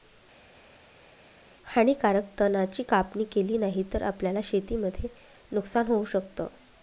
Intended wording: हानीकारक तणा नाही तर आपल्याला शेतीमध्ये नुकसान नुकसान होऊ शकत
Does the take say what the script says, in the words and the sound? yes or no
no